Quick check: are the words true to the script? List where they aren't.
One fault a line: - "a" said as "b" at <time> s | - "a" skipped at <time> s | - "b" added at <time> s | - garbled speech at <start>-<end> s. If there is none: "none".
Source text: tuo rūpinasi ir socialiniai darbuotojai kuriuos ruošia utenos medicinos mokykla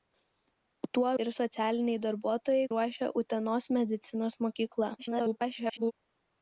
- "rūpinasi" skipped at 1.1 s
- "kuriuos" skipped at 2.7 s
- garbled speech at 5.0-5.9 s